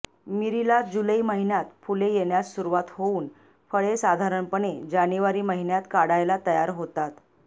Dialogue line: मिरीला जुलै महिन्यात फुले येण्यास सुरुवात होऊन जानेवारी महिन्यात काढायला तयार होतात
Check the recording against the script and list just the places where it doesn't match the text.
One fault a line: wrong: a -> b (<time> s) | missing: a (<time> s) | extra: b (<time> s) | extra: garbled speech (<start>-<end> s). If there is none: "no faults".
extra: फळे साधारणपणे (3.7 s)